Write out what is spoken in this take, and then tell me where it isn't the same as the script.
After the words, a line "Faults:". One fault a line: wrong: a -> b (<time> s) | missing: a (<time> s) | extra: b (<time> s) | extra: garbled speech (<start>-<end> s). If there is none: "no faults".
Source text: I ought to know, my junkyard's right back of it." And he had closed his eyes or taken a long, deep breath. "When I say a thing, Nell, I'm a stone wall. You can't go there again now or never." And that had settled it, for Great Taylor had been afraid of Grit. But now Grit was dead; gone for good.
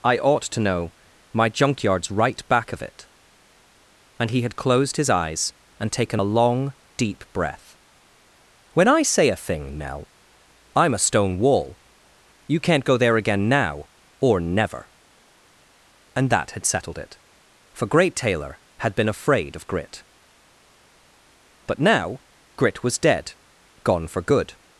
I ought to know, my junkyard's right back of it." And he had closed his eyes and taken a long, deep breath. "When I say a thing, Nell, I'm a stone wall. You can't go there again now or never." And that had settled it, for Great Taylor had been afraid of Grit. But now Grit was dead; gone for good.
Faults:
wrong: or -> and (5.8 s)